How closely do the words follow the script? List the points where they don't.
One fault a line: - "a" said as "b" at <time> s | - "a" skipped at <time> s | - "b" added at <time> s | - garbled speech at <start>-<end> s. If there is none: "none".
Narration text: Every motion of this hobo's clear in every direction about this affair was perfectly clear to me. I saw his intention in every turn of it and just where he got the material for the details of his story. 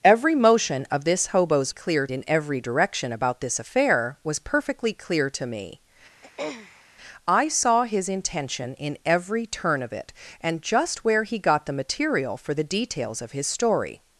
none